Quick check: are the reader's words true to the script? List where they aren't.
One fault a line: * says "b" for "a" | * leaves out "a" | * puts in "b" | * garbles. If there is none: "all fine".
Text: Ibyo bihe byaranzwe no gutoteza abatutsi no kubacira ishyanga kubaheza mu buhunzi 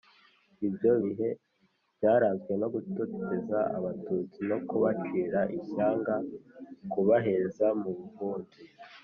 all fine